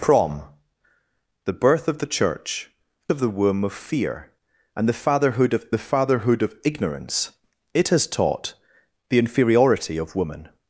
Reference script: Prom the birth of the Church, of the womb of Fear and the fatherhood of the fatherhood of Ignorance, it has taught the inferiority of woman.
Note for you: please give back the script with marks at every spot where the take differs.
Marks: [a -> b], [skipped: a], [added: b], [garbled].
Prom the birth of the Church, of the womb of Fear and the fatherhood of the fatherhood of Ignorance, it has taught the inferiority of woman.